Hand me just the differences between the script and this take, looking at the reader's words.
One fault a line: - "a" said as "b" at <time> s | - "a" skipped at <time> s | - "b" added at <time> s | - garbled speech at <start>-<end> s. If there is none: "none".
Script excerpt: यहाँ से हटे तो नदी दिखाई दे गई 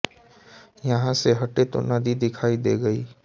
none